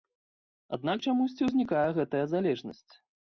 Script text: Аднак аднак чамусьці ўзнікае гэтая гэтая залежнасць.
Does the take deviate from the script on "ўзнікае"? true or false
false